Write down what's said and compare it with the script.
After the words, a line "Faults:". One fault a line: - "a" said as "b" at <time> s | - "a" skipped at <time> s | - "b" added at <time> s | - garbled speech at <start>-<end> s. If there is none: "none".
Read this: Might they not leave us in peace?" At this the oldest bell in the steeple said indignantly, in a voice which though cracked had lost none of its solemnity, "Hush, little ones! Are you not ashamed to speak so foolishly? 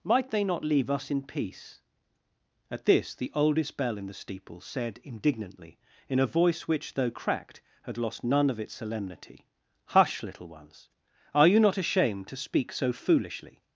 Might they not leave us in peace?" At this the oldest bell in the steeple said indignantly, in a voice which though cracked had lost none of its solemnity, "Hush, little ones! Are you not ashamed to speak so foolishly?
Faults:
none